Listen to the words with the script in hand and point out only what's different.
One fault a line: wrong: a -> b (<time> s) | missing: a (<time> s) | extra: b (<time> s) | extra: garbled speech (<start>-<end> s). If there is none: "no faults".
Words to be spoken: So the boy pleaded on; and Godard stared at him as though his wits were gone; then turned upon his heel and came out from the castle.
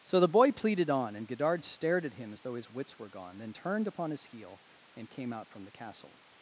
no faults